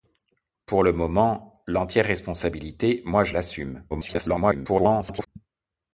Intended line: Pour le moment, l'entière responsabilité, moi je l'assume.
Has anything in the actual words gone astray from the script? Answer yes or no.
yes